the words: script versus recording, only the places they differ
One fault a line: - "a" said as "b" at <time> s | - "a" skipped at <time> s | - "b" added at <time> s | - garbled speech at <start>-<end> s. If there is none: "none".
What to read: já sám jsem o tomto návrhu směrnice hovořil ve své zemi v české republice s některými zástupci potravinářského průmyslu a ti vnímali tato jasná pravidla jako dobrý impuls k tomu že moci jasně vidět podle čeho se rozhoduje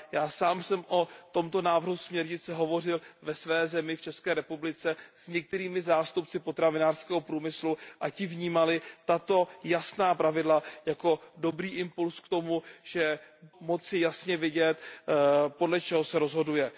none